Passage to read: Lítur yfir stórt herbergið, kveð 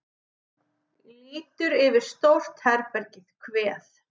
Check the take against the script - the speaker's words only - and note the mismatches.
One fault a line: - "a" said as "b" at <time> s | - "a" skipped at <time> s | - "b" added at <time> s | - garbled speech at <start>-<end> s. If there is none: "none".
none